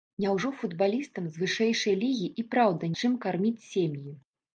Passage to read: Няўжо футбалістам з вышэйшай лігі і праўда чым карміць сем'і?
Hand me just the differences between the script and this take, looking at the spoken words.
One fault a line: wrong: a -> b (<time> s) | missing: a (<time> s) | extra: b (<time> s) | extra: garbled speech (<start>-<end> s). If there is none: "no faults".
no faults